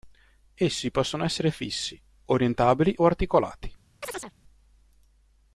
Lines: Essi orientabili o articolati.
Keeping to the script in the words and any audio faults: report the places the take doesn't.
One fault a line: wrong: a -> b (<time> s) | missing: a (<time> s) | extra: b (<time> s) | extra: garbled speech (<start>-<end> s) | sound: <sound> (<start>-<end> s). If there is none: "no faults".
extra: possono essere fissi (0.9 s)
sound: chirp (4.0-4.3 s)